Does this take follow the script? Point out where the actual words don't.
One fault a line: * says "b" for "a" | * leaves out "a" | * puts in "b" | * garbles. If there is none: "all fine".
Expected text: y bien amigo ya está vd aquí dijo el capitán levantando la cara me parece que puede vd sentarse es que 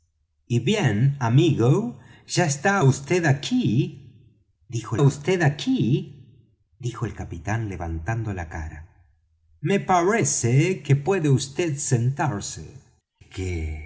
* puts in "vd aquí dijo"
* leaves out "es"